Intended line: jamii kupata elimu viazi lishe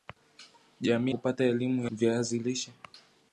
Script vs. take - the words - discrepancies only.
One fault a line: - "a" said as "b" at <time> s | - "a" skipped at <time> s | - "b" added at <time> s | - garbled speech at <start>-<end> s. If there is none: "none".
none